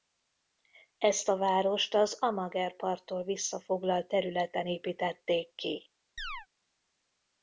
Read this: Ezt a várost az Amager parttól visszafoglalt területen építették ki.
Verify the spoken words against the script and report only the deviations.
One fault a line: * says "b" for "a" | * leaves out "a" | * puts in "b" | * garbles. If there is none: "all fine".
all fine